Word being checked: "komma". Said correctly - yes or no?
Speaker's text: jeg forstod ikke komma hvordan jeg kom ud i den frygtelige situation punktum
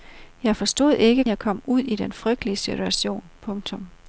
no